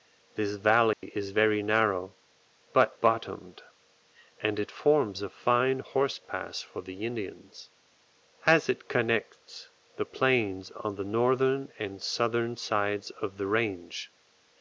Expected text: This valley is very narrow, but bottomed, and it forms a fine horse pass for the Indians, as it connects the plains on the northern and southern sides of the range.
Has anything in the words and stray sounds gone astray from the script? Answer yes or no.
yes